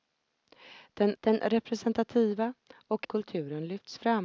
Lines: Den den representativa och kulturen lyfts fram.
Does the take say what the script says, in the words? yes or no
yes